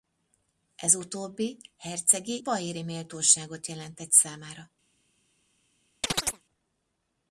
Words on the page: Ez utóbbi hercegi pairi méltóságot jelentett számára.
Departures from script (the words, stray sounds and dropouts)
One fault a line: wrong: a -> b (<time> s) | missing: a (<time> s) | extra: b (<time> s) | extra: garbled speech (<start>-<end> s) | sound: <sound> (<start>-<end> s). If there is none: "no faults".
sound: chirp (6.0-6.4 s)